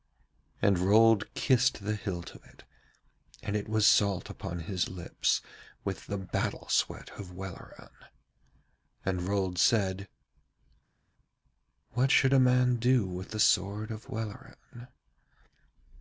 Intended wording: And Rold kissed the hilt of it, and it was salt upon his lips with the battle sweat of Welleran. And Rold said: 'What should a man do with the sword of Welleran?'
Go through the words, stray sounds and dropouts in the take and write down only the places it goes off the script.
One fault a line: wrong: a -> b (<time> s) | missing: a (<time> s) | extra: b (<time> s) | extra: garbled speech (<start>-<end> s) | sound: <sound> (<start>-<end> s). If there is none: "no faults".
no faults